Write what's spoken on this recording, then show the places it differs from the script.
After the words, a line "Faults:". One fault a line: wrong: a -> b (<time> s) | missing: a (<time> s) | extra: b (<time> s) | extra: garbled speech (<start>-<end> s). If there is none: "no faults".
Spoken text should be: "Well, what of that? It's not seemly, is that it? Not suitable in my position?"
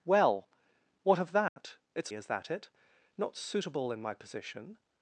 "Well, what of that? It's is that it? Not suitable in my position?"
Faults:
missing: not seemly (2.1 s)